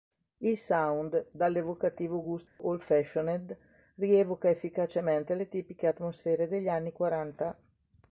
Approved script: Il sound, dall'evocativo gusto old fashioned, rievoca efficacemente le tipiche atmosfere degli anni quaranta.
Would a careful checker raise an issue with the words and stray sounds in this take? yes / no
yes